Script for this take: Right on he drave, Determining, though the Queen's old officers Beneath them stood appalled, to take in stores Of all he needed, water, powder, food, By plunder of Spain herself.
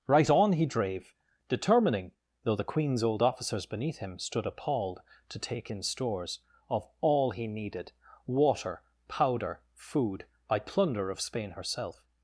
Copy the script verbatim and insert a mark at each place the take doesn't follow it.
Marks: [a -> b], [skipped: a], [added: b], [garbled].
Right on he drave, Determining, though the Queen's old officers Beneath [them -> him] stood appalled, to take in stores Of all he needed, water, powder, food, By plunder of Spain herself.